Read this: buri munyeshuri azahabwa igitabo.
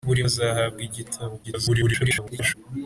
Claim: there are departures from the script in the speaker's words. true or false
true